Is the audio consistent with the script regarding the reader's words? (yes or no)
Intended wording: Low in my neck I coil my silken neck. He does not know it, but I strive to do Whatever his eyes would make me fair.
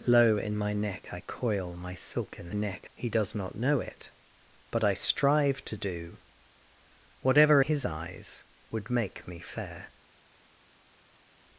yes